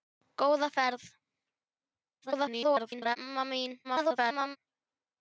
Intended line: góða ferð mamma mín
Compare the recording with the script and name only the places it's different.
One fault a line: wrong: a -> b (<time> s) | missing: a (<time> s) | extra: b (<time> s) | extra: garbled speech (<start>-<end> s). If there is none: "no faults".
extra: garbled speech (2.2-3.2 s)
extra: garbled speech (3.8-4.6 s)